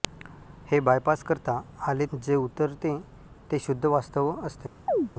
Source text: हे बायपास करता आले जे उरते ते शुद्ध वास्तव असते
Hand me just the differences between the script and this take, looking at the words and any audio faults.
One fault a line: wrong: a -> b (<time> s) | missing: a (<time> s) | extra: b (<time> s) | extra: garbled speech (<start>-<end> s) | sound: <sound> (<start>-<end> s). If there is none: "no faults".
sound: chirp (4.9-5.1 s)